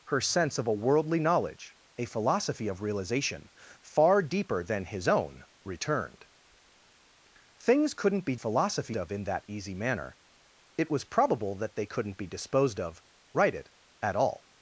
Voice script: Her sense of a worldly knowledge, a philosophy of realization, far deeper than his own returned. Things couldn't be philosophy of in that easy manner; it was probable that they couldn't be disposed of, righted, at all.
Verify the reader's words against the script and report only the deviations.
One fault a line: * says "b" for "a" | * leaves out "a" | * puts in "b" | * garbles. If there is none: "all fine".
all fine